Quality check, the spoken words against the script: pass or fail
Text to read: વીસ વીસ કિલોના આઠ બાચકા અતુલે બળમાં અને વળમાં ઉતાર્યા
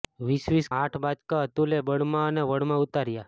fail